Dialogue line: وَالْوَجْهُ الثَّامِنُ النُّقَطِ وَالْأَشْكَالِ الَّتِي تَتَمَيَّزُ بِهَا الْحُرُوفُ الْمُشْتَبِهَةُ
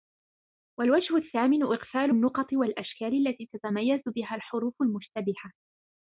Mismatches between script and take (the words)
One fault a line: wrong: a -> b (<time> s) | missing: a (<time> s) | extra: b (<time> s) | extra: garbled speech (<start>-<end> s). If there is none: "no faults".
extra: إغْفَالُ (1.6 s)